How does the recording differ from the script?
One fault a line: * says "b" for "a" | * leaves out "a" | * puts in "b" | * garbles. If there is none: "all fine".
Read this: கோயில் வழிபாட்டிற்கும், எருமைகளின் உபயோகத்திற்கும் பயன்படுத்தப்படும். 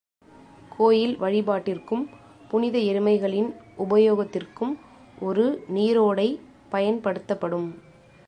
* puts in "புனித"
* puts in "ஒரு நீரோடை"